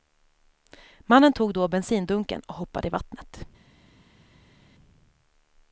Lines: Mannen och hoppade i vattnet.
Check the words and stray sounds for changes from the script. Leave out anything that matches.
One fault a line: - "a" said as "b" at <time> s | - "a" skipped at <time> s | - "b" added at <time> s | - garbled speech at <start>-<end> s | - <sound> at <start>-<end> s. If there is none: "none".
- "tog då bensindunken" added at 1.3 s